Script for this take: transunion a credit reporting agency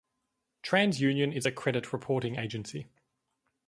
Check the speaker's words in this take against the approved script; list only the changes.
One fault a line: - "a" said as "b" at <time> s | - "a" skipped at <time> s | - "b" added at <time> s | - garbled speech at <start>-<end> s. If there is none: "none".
- "is" added at 1.3 s